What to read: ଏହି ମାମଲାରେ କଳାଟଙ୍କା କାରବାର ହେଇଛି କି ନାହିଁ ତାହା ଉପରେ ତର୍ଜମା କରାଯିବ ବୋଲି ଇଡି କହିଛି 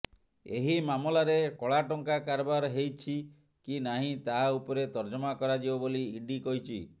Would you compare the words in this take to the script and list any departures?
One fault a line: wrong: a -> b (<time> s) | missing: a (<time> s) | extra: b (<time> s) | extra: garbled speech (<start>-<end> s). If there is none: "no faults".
no faults